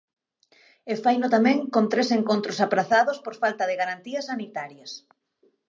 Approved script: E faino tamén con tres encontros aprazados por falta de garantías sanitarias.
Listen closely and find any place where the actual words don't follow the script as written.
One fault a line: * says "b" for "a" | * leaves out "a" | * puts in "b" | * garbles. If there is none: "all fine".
all fine